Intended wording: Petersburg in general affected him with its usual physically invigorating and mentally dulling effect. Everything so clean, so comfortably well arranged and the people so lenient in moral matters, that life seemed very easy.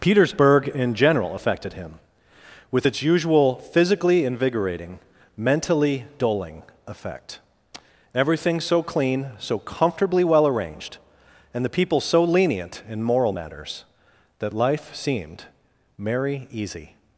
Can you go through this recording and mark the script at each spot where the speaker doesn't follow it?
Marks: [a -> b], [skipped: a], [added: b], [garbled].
Petersburg in general affected him with its usual physically invigorating [skipped: and] mentally dulling effect. Everything so clean, so comfortably well arranged and the people so lenient in moral matters, that life seemed [very -> merry] easy.